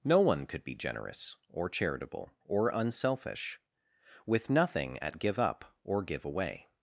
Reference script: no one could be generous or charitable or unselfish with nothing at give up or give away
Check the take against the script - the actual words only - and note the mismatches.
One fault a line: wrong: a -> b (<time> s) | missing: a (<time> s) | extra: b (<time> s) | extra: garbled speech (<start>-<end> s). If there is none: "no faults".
no faults